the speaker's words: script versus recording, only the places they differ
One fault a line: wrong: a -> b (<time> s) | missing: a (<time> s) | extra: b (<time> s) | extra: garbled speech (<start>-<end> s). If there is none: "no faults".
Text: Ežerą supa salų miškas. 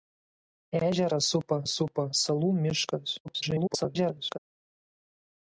extra: supa (1.7 s)
extra: garbled speech (3.2-4.4 s)